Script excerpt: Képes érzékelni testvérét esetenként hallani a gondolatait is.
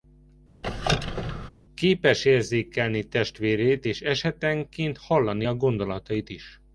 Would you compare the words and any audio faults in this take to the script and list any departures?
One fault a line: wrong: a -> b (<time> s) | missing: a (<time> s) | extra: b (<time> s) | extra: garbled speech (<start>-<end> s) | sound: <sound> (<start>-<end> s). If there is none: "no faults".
sound: squeak (0.6-1.5 s)
extra: és (3.8 s)